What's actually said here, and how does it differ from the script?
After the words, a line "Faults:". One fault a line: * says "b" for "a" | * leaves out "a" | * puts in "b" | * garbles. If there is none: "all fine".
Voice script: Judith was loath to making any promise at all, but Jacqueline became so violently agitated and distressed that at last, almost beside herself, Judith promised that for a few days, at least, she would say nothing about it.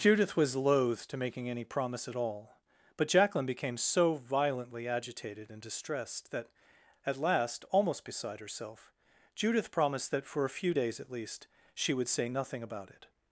Judith was loath to making any promise at all, but Jacqueline became so violently agitated and distressed that at last, almost beside herself, Judith promised that for a few days, at least, she would say nothing about it.
Faults:
all fine